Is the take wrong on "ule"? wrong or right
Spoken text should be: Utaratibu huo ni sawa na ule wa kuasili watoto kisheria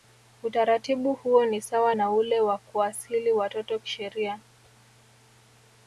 right